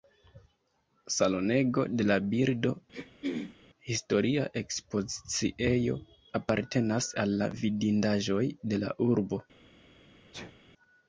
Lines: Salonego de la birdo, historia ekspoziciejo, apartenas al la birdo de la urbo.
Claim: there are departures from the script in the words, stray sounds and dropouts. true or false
true